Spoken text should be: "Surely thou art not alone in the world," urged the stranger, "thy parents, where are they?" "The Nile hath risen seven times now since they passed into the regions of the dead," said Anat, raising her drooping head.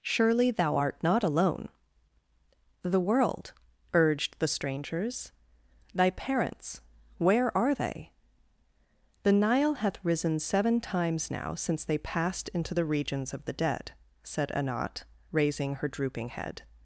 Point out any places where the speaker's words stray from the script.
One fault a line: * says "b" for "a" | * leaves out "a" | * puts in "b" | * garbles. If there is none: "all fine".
* leaves out "in"
* says "strangers" for "stranger"